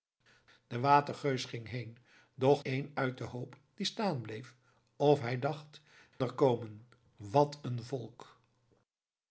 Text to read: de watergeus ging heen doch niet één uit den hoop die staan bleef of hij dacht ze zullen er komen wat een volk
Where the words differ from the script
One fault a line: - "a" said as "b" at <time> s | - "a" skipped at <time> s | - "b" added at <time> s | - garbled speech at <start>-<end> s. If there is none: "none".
- "niet" skipped at 2.6 s
- "ze zullen" skipped at 5.8 s